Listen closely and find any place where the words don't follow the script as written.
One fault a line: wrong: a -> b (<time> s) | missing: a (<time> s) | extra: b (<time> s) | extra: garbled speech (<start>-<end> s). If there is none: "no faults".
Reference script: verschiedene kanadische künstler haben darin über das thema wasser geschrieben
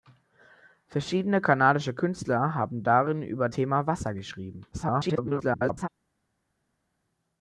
missing: das (3.5 s)
extra: garbled speech (4.7-5.9 s)